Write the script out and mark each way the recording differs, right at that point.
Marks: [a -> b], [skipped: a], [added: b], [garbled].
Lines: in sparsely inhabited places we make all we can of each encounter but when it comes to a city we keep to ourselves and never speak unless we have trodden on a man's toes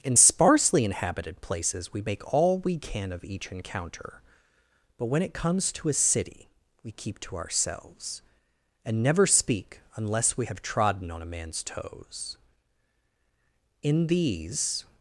in sparsely inhabited places we make all we can of each encounter but when it comes to a city we keep to ourselves and never speak unless we have trodden on a man's toes [added: in these]